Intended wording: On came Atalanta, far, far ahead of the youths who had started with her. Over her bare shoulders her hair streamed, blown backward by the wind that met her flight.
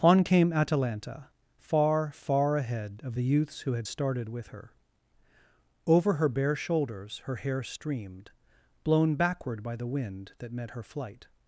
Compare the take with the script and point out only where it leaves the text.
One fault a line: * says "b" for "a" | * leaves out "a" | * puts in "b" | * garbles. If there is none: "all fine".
all fine